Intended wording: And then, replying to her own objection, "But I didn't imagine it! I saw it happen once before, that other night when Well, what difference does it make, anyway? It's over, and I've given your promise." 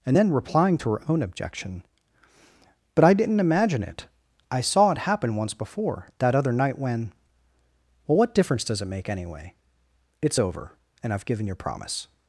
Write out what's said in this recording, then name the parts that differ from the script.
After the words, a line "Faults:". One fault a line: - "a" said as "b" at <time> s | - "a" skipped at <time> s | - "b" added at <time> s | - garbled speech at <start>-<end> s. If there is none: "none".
And then, replying to her own objection, "But I didn't imagine it! I saw it happen once before, that other night when Well, what difference does it make, anyway? It's over, and I've given your promise."
Faults:
none